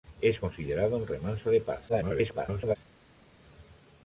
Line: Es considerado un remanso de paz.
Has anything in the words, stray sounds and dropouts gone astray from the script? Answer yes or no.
yes